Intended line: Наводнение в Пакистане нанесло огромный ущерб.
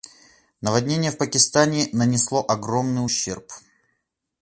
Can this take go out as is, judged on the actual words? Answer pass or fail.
pass